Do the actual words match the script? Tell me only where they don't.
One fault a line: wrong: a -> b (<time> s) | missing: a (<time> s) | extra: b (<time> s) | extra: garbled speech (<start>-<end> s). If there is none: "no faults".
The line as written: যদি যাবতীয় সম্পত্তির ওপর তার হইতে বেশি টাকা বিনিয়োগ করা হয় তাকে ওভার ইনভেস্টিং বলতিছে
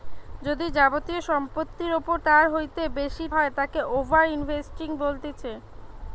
missing: টাকা বিনিয়োগ করা (3.3 s)